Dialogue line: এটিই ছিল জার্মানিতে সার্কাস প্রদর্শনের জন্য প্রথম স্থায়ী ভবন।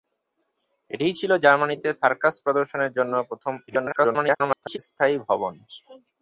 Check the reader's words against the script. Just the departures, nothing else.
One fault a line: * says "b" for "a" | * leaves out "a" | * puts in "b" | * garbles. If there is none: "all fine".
* garbles